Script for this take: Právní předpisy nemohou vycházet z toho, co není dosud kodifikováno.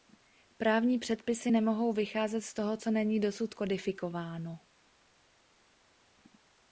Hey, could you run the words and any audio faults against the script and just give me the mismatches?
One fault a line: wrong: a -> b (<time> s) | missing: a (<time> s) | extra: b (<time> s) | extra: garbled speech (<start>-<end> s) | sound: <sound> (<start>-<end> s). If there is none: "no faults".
no faults